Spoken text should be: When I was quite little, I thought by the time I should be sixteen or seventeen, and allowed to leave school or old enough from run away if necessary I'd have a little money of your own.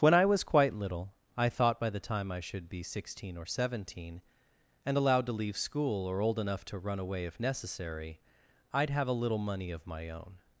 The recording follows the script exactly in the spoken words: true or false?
false